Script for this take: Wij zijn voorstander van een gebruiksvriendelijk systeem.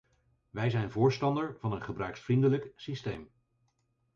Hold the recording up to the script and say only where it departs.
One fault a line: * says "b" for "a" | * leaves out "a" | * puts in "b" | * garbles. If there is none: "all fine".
all fine